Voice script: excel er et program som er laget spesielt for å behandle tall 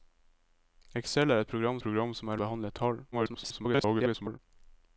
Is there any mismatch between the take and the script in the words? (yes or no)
yes